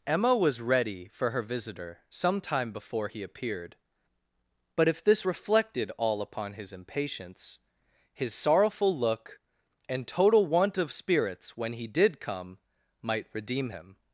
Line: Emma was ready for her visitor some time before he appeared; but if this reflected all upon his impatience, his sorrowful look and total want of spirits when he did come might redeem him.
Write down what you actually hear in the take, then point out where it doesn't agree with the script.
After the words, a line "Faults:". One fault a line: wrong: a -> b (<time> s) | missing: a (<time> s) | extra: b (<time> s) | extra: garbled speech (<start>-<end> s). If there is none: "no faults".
Emma was ready for her visitor some time before he appeared; but if this reflected all upon his impatience, his sorrowful look and total want of spirits when he did come might redeem him.
Faults:
no faults